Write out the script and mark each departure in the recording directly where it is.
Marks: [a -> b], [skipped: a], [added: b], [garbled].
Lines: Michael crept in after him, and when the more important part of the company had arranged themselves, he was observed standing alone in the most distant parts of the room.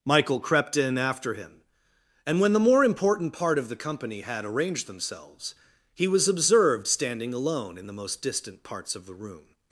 Michael crept in after him, and when the more important part of the company had arranged themselves, he was observed standing alone in the most distant parts of the room.